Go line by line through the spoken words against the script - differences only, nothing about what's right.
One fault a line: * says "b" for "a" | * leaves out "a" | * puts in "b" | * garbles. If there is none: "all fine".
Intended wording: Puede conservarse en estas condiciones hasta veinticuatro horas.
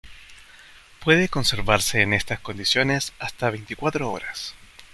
all fine